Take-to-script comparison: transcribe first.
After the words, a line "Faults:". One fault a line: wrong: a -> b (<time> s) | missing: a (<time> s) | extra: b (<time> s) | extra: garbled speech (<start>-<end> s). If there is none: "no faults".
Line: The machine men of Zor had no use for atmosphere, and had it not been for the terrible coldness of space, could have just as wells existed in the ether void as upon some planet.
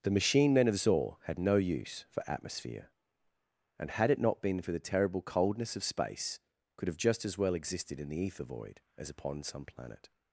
The machine men of Zor had no use for atmosphere, and had it not been for the terrible coldness of space, could have just as well existed in the ether void as upon some planet.
Faults:
wrong: wells -> well (7.4 s)